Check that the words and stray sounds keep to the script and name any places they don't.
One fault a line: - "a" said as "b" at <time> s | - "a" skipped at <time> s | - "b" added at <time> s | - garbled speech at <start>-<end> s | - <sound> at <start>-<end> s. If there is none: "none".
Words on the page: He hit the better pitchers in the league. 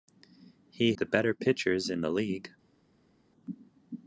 - "hit" skipped at 0.9 s